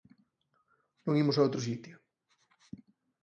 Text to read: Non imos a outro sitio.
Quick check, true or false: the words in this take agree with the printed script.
true